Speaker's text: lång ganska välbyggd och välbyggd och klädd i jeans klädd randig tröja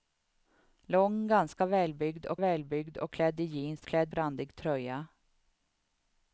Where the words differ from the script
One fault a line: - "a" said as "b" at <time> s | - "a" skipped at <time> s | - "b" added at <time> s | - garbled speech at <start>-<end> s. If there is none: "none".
none